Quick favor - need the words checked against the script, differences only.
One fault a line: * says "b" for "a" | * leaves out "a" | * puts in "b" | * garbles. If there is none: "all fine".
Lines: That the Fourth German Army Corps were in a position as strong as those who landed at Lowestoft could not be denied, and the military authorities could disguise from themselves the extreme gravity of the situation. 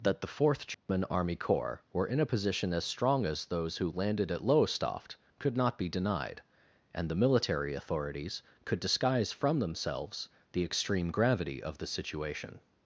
all fine